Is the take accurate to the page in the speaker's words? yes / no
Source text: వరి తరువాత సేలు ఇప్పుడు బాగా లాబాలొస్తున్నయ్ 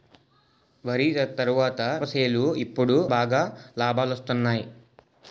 yes